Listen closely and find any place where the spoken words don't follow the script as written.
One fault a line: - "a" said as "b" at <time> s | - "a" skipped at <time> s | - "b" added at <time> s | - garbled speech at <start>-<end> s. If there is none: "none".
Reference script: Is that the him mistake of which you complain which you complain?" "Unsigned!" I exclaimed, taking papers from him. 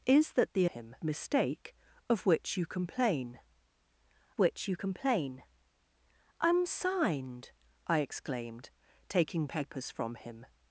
none